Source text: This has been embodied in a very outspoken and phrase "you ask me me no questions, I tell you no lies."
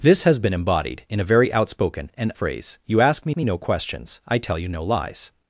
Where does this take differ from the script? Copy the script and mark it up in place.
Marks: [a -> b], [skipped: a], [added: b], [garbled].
This has been embodied in a very outspoken and phrase "you ask me me no questions, I tell you no lies."